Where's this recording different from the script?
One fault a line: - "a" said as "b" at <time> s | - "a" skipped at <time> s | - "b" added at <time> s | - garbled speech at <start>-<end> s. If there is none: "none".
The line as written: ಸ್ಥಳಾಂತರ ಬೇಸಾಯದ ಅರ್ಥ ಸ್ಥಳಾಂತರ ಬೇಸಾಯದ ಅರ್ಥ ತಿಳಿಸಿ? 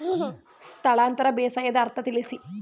- "ಸ್ಥಳಾಂತರ ಬೇಸಾಯದ ಅರ್ಥ" skipped at 2.0 s